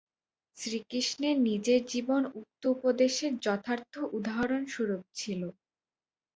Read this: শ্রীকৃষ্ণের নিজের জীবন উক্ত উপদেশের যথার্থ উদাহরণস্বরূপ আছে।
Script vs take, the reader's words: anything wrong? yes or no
yes